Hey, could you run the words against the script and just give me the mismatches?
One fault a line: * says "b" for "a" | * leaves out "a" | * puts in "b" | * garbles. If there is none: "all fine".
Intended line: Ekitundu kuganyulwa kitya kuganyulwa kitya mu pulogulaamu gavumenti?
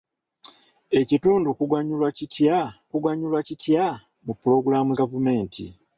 all fine